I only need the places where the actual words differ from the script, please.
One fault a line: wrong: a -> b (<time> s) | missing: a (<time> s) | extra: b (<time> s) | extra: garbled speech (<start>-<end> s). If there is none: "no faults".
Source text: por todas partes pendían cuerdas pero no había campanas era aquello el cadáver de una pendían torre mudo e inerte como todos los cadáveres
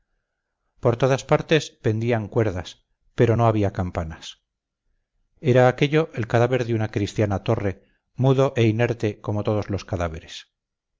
wrong: pendían -> cristiana (6.9 s)